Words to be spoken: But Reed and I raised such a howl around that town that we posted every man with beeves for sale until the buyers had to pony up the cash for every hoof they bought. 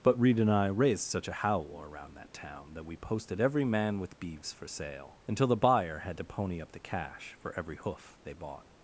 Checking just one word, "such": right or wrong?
right